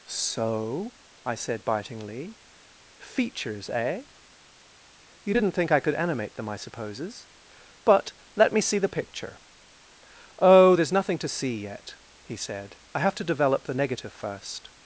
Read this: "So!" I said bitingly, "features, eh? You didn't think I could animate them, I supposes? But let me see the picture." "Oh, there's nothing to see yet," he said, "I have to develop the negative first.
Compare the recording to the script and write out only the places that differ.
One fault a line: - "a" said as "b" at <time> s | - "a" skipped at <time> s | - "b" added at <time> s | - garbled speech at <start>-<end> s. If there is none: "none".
none